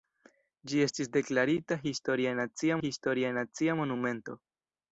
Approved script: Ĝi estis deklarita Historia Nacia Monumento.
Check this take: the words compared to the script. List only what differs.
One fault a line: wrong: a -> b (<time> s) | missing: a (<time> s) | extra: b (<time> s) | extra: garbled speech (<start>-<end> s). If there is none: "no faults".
extra: Historia Nacia (2.8 s)